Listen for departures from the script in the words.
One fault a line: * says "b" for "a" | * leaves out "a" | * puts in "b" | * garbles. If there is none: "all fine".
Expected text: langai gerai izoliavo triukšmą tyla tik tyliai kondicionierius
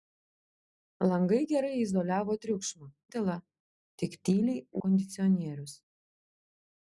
all fine